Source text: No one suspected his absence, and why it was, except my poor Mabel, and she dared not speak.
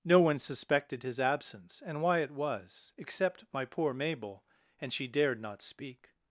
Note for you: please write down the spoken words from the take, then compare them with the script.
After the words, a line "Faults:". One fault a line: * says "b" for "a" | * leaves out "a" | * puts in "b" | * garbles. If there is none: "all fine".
No one suspected his absence, and why it was, except my poor Mabel, and she dared not speak.
Faults:
all fine